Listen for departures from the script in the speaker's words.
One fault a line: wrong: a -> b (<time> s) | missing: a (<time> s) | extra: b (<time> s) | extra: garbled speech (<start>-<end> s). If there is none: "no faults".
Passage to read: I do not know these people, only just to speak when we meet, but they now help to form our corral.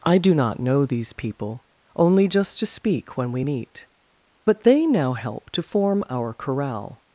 no faults